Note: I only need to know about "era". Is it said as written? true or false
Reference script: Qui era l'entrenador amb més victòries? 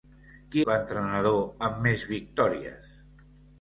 false